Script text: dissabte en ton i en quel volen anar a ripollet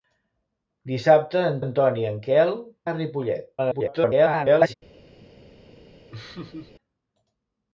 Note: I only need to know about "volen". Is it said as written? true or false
false